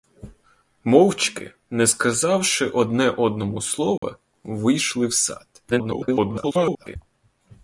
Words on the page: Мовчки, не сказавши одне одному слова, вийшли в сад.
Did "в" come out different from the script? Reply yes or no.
no